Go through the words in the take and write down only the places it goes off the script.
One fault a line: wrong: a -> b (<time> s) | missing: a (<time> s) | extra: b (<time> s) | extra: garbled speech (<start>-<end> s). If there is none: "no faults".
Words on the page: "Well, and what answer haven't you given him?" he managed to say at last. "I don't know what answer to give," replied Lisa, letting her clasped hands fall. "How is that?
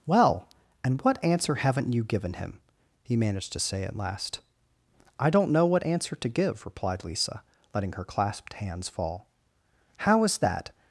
no faults